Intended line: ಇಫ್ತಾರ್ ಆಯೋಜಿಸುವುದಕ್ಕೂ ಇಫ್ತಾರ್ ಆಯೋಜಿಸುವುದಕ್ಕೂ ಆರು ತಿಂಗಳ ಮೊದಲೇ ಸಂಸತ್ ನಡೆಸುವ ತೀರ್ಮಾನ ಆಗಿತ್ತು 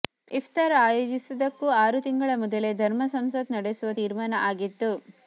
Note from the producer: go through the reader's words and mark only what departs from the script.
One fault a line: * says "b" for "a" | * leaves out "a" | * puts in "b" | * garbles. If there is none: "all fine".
* leaves out "ಇಫ್ತಾರ್ ಆಯೋಜಿಸುವುದಕ್ಕೂ"
* puts in "ಧರ್ಮ"